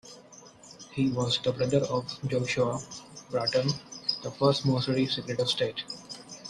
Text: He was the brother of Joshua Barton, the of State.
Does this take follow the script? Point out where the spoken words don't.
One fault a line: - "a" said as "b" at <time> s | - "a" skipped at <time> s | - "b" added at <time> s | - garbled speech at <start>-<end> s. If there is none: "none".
- "first Missouri Secretary" added at 4.3 s